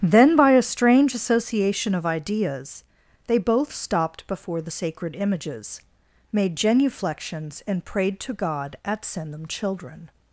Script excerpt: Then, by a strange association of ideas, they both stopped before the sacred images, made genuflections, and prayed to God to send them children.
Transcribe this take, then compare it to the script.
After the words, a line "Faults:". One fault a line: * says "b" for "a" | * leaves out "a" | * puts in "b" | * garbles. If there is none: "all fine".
Then, by a strange association of ideas, they both stopped before the sacred images, made genuflections, and prayed to God at send them children.
Faults:
* says "at" for "to"